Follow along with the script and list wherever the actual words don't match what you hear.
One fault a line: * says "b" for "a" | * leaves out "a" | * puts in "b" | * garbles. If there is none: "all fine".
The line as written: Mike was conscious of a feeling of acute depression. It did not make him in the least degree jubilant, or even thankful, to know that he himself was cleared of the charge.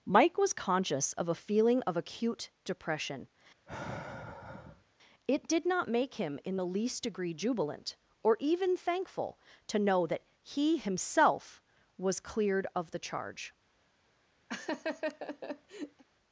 all fine